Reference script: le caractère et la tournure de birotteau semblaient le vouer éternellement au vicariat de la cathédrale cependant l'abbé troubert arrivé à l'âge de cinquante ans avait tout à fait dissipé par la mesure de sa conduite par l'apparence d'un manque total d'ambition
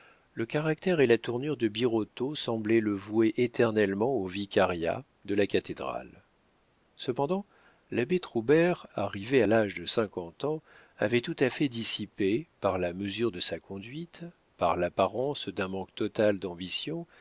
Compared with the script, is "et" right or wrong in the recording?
right